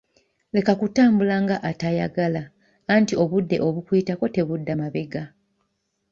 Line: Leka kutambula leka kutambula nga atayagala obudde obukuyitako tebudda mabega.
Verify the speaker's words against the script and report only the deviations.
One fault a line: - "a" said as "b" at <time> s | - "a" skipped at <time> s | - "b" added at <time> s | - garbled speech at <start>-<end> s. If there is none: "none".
- "leka kutambula" skipped at 1.4 s
- "anti" added at 2.9 s